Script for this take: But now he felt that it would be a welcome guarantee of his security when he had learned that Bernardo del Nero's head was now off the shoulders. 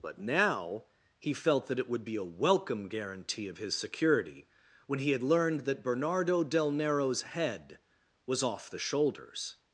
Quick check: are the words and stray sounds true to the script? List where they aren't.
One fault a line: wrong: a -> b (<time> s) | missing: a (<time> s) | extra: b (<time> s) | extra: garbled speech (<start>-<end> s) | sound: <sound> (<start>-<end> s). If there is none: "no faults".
missing: now (8.4 s)